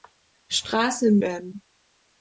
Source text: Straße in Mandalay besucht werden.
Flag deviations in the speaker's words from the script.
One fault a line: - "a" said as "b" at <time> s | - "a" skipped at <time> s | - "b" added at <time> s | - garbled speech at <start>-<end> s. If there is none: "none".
- "Mandalay besucht" skipped at 1.2 s